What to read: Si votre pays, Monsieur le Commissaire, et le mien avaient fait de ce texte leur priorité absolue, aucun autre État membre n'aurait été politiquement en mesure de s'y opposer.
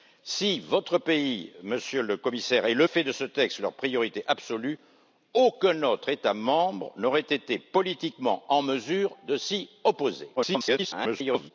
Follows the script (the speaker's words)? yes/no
no